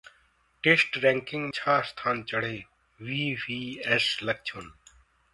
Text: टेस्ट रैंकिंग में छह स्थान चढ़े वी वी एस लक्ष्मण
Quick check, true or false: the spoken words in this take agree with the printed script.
false